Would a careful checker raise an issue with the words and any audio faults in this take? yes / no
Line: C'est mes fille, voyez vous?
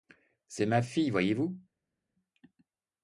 yes